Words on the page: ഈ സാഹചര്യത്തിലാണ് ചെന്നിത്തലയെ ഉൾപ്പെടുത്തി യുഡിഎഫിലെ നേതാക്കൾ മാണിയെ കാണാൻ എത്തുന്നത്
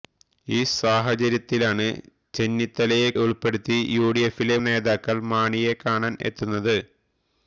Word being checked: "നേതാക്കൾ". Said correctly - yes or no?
yes